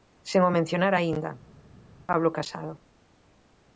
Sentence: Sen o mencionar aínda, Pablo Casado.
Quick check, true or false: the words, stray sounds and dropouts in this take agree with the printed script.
true